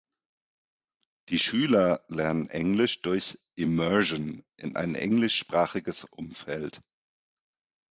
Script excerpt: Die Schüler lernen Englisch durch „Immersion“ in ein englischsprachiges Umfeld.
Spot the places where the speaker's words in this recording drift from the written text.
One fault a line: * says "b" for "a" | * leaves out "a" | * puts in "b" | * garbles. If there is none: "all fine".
all fine